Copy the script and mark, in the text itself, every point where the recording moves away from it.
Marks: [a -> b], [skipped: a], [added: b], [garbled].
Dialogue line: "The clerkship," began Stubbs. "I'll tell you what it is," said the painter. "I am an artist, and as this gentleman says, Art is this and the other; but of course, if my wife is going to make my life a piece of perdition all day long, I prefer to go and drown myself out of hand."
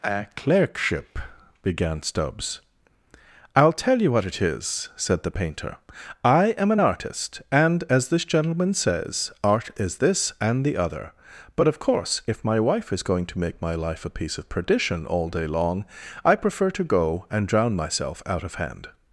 ["The -> A] clerkship," began Stubbs. "I'll tell you what it is," said the painter. "I am an artist, and as this gentleman says, Art is this and the other; but of course, if my wife is going to make my life a piece of perdition all day long, I prefer to go and drown myself out of hand."